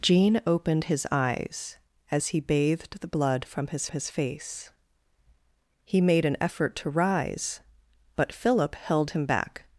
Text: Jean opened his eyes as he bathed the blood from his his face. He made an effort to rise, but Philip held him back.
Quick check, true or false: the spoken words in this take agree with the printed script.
true